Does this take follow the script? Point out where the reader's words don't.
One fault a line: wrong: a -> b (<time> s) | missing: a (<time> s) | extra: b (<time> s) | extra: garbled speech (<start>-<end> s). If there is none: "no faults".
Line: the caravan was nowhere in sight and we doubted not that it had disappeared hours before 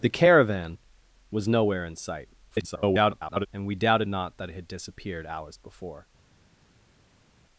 extra: garbled speech (2.5-3.5 s)